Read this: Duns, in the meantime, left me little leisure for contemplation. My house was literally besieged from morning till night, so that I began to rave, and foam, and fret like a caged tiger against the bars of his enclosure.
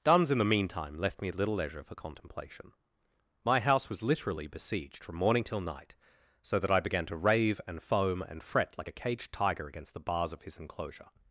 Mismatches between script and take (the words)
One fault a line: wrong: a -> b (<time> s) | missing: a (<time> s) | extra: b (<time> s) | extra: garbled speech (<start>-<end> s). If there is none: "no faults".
no faults